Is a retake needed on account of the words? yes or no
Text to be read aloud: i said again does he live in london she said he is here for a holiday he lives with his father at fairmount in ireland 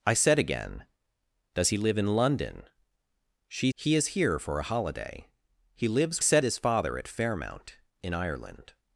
yes